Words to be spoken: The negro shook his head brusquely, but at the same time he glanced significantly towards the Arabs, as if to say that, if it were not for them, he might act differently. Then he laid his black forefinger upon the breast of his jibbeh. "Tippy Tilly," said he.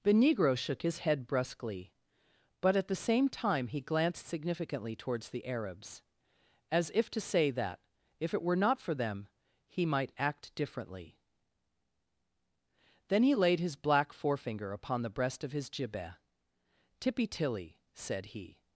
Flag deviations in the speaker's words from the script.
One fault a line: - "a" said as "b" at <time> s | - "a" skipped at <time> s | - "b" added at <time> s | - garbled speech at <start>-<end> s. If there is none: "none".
none